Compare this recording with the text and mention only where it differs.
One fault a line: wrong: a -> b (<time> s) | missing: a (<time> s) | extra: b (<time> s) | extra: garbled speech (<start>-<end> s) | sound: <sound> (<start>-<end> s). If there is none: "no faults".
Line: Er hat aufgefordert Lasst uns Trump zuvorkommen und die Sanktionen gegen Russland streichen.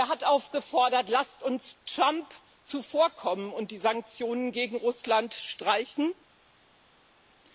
no faults